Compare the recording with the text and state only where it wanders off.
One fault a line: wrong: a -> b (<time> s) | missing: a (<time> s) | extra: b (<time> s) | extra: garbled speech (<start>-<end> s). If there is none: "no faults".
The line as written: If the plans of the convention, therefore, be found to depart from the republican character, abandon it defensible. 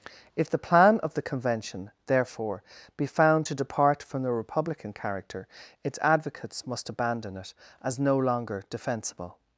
wrong: plans -> plan (0.6 s)
extra: its advocates must (5.8 s)
extra: as no longer (7.8 s)